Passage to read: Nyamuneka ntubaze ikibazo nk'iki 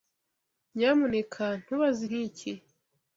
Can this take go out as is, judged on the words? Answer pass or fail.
fail